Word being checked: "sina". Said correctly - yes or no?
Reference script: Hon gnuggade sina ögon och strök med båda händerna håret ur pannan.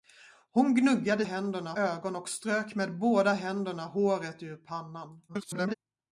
no